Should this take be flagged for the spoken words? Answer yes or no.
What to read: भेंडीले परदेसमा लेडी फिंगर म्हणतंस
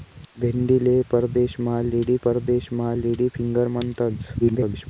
yes